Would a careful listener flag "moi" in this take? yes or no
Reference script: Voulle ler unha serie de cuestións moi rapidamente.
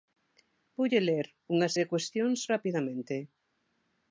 yes